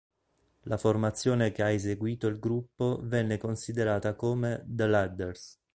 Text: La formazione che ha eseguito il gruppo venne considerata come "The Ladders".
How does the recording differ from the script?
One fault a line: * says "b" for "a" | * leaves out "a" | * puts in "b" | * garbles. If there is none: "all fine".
all fine